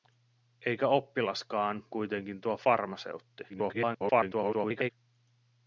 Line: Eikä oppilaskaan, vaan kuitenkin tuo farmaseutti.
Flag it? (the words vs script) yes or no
yes